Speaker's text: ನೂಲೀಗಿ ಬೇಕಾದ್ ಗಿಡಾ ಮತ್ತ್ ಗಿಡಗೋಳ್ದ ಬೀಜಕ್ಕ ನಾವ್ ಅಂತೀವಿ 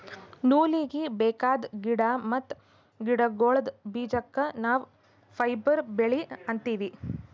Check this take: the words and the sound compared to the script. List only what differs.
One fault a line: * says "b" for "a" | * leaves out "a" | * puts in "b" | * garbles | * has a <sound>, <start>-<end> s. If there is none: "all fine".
* puts in "ಫೈಬರ್ ಬೆಳಿ"